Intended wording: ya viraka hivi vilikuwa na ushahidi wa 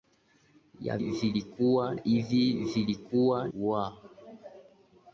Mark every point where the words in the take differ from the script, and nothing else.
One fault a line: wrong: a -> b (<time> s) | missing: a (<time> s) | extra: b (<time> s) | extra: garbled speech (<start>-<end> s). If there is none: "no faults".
wrong: viraka -> vilikuwa (1.0 s)
missing: na ushahidi (3.5 s)